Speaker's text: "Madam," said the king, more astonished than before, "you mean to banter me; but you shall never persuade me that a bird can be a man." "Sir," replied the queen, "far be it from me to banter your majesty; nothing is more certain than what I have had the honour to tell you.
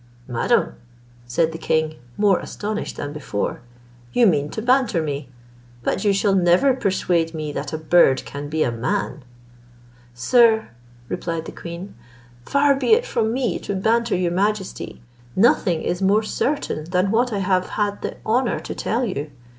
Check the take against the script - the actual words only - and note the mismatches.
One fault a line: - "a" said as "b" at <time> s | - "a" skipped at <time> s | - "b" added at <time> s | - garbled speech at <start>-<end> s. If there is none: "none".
none